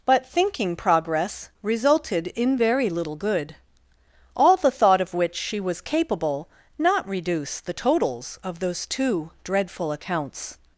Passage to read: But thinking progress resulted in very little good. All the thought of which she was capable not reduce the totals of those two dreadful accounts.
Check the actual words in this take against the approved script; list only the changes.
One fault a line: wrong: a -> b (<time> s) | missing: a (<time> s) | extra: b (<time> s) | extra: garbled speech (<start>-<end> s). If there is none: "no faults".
no faults